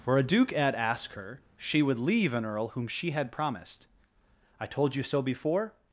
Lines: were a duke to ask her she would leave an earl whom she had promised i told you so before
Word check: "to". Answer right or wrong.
wrong